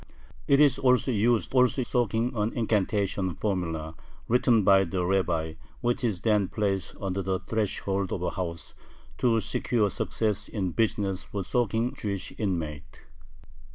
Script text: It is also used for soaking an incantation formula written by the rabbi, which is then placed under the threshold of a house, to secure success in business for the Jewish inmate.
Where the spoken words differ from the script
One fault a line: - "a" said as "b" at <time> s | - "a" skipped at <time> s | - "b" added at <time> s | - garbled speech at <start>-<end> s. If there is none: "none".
- "for" said as "also" at 1.5 s
- "the" said as "soaking" at 11.4 s